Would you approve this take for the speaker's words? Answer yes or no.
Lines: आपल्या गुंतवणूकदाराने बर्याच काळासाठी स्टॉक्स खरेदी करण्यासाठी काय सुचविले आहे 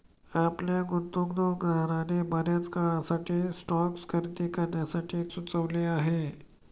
no